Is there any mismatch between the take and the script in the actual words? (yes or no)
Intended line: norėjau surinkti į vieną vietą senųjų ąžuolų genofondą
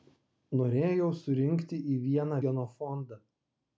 yes